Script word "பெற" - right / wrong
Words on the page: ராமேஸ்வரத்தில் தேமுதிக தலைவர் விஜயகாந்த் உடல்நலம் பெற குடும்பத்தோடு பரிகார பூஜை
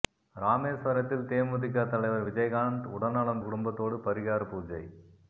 wrong